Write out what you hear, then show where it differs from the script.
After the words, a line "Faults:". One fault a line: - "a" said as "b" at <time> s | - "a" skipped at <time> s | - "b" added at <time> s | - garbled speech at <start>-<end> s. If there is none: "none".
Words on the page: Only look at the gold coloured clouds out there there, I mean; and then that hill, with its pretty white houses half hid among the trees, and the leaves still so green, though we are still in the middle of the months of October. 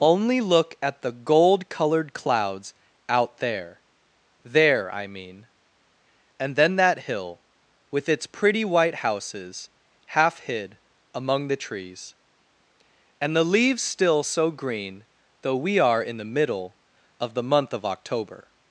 Only look at the gold coloured clouds out there there, I mean; and then that hill, with its pretty white houses half hid among the trees, and the leaves still so green, though we are in the middle of the month of October.
Faults:
- "still" skipped at 16.0 s
- "months" said as "month" at 17.4 s